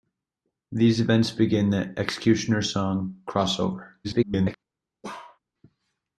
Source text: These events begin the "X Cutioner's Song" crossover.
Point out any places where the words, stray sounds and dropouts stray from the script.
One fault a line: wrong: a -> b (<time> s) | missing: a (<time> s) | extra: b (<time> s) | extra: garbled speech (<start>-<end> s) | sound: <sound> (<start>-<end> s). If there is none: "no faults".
extra: garbled speech (4.0-4.5 s)
sound: bark (5.0-5.4 s)